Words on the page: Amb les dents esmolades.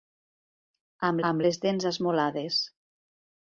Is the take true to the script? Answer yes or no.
no